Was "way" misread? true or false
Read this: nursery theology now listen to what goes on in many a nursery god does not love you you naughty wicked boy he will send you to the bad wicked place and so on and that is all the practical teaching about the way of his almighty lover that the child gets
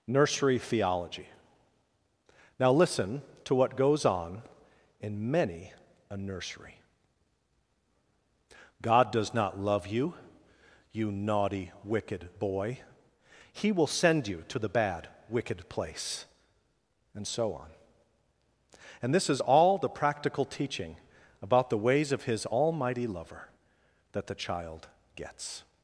true